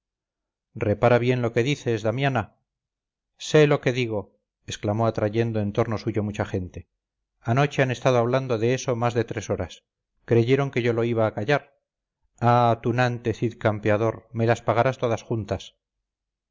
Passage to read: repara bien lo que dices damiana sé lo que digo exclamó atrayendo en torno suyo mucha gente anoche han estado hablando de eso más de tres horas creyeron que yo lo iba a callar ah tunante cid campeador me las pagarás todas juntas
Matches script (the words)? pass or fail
pass